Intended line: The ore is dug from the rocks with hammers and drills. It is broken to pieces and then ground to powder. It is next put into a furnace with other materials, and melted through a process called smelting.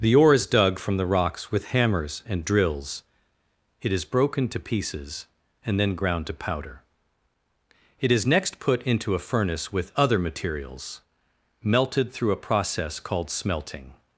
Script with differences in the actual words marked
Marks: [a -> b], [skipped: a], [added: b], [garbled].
The ore is dug from the rocks with hammers and drills. It is broken to pieces and then ground to powder. It is next put into a furnace with other materials, [skipped: and] melted through a process called smelting.